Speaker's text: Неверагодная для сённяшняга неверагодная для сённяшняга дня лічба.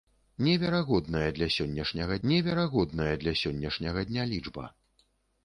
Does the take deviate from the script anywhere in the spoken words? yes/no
no